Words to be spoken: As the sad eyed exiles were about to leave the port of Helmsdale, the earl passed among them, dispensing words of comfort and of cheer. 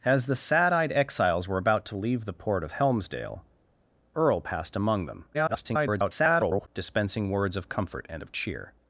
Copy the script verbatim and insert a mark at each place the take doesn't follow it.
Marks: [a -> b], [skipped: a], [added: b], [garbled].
As the sad eyed exiles were about to leave the port of Helmsdale, [skipped: the] earl passed among them, [garbled] dispensing words of comfort and of cheer.